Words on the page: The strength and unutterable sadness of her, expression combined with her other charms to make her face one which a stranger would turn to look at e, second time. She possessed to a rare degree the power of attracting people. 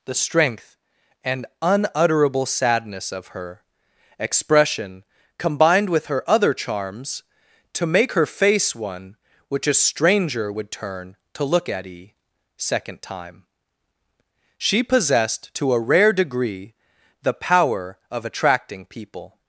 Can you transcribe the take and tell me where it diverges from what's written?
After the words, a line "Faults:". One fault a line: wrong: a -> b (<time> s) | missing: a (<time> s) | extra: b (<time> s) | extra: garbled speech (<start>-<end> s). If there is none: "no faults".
The strength and unutterable sadness of her, expression combined with her other charms to make her face one which a stranger would turn to look at e, second time. She possessed to a rare degree the power of attracting people.
Faults:
no faults